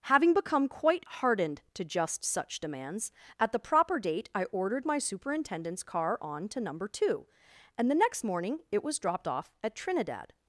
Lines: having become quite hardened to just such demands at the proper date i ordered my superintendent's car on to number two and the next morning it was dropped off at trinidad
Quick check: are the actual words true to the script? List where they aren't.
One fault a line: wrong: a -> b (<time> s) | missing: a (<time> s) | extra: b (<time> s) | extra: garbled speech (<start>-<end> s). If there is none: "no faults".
no faults